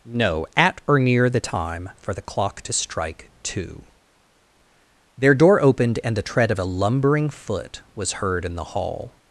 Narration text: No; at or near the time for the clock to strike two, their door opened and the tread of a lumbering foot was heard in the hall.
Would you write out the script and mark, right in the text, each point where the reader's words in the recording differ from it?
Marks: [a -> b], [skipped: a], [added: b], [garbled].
No; at or near the time for the clock to strike two, their door opened and the tread of a lumbering foot was heard in the hall.